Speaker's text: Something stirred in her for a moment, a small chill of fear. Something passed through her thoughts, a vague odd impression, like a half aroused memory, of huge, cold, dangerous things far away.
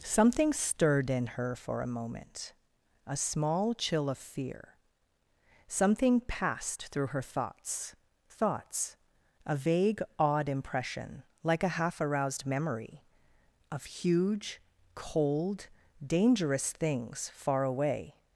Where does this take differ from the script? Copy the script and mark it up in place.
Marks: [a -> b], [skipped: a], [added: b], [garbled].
Something stirred in her for a moment, a small chill of fear. Something passed through her thoughts, [added: thoughts] a vague odd impression, like a half aroused memory, of huge, cold, dangerous things far away.